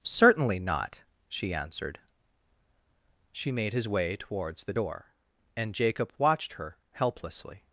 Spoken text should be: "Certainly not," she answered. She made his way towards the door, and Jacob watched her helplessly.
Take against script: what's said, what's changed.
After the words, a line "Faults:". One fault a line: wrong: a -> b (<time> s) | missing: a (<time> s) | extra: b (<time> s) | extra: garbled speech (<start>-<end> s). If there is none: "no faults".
"Certainly not," she answered. She made his way towards the door, and Jacob watched her helplessly.
Faults:
no faults